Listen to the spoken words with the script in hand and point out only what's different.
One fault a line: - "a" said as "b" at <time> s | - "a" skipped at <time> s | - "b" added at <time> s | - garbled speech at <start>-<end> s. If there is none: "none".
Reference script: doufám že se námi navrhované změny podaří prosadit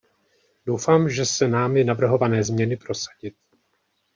- "podaří" skipped at 2.8 s